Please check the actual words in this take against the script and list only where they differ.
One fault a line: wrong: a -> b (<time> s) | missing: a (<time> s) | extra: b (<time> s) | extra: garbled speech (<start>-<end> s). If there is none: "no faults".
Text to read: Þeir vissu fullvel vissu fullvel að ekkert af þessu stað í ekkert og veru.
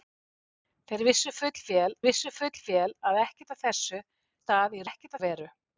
no faults